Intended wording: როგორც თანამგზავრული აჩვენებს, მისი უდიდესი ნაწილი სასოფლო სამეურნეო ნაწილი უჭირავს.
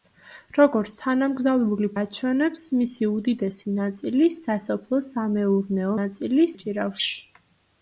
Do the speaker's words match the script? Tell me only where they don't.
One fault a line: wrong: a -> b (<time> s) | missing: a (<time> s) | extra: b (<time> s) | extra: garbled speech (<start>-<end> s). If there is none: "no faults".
no faults